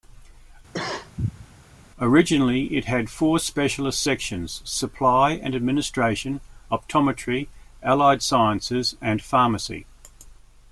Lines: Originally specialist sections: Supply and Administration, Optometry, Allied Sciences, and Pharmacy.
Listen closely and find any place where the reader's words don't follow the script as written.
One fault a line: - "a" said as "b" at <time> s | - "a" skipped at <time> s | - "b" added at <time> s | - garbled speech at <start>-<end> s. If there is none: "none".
- "it had four" added at 2.8 s